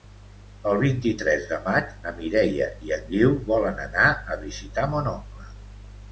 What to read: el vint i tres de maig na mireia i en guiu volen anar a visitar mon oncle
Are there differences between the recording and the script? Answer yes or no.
no